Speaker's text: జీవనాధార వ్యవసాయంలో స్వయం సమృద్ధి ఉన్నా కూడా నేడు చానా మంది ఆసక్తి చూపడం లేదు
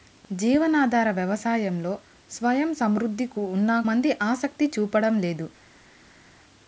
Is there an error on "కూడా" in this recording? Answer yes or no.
yes